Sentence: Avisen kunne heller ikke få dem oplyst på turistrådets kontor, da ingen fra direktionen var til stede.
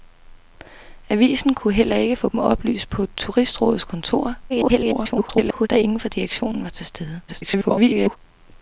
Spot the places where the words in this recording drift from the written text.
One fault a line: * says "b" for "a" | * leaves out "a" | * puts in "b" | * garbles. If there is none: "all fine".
* garbles
* garbles